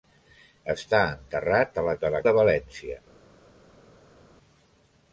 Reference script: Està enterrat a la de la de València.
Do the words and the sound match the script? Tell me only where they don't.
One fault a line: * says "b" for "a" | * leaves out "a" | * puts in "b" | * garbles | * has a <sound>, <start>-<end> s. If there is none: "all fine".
all fine